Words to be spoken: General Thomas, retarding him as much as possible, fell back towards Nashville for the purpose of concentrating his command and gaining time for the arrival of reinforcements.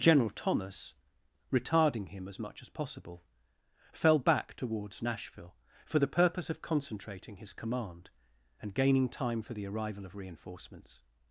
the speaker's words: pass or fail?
pass